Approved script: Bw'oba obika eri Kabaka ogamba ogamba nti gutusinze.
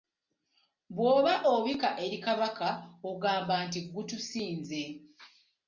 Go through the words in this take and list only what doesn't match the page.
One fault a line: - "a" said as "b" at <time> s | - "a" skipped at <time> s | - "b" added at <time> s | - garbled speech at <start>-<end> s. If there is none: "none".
- "ogamba" skipped at 3.5 s